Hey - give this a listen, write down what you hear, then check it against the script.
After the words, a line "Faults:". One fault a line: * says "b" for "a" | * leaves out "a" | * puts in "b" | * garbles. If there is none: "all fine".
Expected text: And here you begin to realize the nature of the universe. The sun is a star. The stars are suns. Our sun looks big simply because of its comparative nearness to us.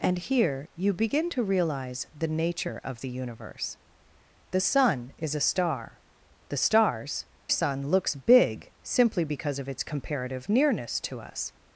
And here you begin to realize the nature of the universe. The sun is a star. The stars sun looks big simply because of its comparative nearness to us.
Faults:
* leaves out "are suns Our"